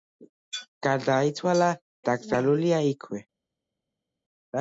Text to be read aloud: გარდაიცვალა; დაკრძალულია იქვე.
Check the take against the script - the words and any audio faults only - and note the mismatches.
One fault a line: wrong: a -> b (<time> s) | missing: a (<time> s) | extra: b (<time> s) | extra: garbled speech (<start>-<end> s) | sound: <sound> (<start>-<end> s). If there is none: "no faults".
no faults